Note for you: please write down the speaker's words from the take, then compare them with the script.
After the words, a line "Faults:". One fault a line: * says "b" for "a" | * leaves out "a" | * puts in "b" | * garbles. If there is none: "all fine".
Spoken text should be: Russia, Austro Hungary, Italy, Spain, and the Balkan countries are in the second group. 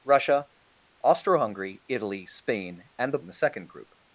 Russia, Austro Hungary, Italy, Spain, and the In the second group.
Faults:
* leaves out "Balkan countries are"